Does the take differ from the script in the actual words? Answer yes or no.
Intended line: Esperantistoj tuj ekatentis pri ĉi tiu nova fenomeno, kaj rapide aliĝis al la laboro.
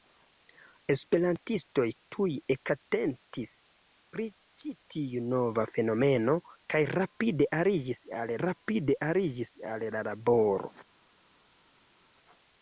yes